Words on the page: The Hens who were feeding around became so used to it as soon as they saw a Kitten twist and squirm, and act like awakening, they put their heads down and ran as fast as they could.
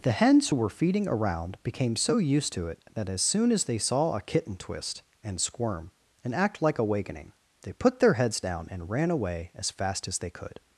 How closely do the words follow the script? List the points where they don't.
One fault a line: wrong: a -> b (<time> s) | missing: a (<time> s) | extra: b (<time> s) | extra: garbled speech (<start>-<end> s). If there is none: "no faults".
extra: that (2.9 s)
extra: away (9.1 s)